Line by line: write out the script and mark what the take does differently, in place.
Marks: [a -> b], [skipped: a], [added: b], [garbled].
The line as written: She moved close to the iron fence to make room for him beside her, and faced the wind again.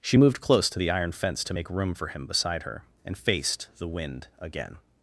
She moved close to the iron fence to make room for him beside her, and faced the wind again.